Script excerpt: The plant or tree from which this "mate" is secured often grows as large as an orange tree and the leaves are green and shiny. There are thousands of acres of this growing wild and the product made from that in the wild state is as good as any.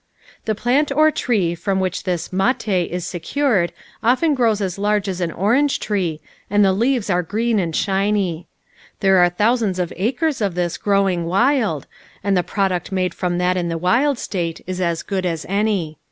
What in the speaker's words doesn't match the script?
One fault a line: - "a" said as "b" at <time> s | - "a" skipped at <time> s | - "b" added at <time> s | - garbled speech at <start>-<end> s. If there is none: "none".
none